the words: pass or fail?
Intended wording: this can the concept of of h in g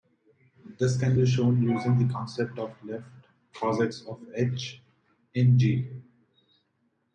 fail